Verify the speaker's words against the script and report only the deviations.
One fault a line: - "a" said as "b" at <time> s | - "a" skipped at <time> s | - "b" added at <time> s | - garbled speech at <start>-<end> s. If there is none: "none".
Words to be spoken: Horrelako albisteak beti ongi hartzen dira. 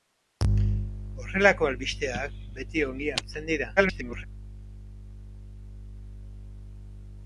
- garbled speech at 3.8-4.2 s